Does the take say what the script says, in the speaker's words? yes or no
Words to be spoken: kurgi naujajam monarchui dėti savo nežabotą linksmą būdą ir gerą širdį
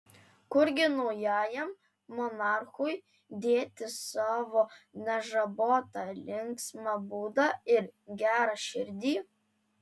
yes